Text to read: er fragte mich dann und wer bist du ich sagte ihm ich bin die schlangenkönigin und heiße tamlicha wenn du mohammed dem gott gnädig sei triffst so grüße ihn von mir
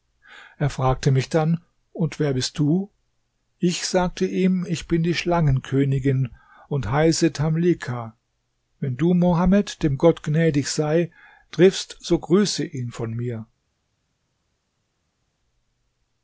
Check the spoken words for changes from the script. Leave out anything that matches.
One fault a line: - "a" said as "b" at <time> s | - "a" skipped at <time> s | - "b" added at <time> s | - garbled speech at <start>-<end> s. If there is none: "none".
none